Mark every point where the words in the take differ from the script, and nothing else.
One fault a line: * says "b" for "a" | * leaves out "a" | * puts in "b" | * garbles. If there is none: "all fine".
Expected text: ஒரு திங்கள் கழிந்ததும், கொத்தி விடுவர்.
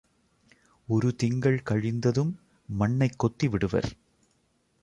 * puts in "மண்ணைக்"